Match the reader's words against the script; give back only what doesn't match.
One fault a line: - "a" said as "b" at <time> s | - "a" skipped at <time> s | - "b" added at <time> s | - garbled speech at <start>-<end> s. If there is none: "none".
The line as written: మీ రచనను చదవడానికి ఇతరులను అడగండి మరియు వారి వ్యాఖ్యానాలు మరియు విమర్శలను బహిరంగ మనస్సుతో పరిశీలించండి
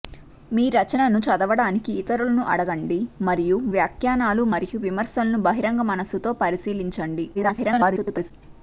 - "వారి" skipped at 3.6 s
- garbled speech at 7.3-8.3 s